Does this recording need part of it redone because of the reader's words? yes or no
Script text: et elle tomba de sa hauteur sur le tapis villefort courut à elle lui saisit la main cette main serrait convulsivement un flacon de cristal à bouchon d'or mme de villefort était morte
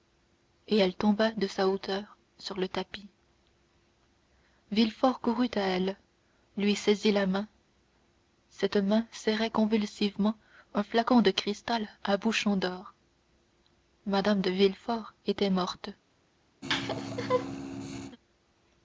no